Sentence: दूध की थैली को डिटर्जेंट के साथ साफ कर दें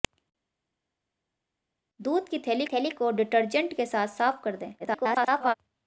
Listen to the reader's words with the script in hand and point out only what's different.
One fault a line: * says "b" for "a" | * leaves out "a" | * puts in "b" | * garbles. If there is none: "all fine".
* puts in "थैली"
* garbles